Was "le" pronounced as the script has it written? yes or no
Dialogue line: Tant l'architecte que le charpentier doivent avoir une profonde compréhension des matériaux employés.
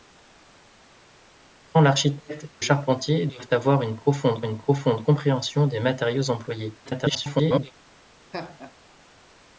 no